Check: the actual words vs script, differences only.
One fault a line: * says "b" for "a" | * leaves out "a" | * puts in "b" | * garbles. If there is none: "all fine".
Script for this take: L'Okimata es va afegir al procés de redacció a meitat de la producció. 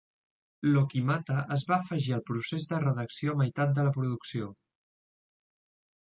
all fine